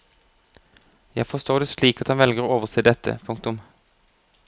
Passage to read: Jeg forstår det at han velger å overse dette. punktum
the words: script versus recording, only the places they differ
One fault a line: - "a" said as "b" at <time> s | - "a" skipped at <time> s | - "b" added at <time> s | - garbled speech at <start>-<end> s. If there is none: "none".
- "slik" added at 1.7 s